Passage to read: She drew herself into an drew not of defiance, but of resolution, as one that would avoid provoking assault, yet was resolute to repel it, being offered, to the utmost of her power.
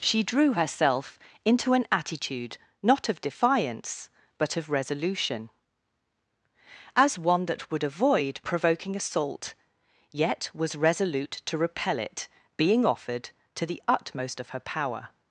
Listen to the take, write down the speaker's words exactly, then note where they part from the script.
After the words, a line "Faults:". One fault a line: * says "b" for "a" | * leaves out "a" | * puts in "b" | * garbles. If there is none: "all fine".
She drew herself into an attitude not of defiance, but of resolution, as one that would avoid provoking assault, yet was resolute to repel it, being offered, to the utmost of her power.
Faults:
* says "attitude" for "drew"